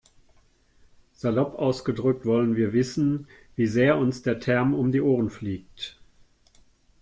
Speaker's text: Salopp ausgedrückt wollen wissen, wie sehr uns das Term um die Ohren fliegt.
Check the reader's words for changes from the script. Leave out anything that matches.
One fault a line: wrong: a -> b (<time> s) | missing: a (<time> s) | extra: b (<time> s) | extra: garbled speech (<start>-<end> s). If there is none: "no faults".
extra: wir (2.5 s)
wrong: das -> der (4.2 s)